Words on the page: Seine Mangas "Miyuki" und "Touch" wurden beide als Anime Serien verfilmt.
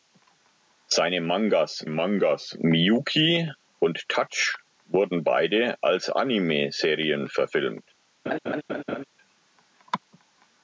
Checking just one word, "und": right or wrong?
right